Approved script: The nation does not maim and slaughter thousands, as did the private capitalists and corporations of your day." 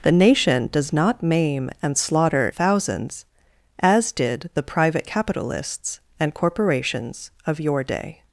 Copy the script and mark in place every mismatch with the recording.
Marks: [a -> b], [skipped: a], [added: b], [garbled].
The nation does not maim and slaughter thousands, as did the private capitalists and corporations of your day."